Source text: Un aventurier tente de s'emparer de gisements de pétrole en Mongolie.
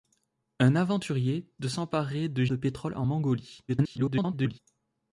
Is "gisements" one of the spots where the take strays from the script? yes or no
yes